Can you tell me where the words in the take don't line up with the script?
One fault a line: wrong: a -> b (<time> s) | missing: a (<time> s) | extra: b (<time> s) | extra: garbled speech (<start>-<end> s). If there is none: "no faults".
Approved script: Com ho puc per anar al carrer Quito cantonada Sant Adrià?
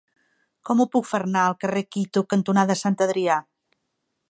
no faults